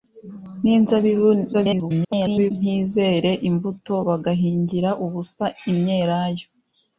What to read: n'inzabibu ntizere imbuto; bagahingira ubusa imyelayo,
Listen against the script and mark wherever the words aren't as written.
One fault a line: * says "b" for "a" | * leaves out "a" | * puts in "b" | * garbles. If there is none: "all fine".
* garbles